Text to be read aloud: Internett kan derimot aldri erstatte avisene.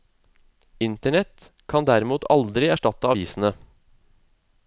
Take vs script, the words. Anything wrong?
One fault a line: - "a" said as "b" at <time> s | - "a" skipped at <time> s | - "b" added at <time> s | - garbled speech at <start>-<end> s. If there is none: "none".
none